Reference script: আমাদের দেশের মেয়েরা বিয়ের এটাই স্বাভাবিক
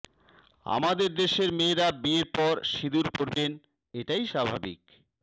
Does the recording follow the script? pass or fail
fail